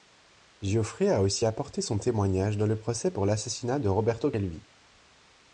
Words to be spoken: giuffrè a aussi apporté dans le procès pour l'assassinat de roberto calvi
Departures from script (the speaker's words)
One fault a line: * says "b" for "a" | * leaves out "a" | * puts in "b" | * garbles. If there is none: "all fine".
* puts in "son témoignage"